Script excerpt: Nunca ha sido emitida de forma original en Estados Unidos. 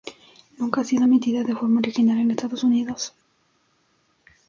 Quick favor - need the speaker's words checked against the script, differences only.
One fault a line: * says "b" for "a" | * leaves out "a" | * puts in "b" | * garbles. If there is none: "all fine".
all fine